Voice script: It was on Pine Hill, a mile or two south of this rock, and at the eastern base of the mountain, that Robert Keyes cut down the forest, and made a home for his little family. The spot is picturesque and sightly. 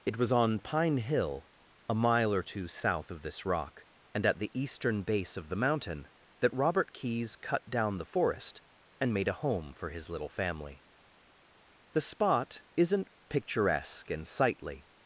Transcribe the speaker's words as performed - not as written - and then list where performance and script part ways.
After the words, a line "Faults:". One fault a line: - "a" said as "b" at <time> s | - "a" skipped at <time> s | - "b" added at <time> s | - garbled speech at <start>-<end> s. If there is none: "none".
It was on Pine Hill, a mile or two south of this rock, and at the eastern base of the mountain, that Robert Keyes cut down the forest, and made a home for his little family. The spot isn't picturesque and sightly.
Faults:
- "is" said as "isn't" at 12.8 s